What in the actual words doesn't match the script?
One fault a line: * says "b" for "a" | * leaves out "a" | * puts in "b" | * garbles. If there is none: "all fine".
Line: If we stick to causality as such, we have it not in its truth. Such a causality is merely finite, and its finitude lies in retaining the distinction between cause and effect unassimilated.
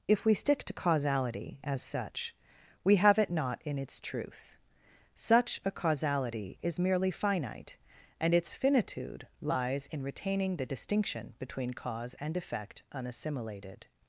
all fine